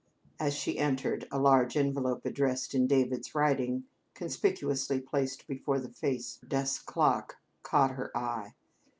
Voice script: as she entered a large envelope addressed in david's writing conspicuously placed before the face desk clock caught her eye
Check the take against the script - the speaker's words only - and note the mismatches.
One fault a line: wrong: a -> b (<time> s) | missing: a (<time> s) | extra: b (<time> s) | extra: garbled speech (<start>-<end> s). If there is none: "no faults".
no faults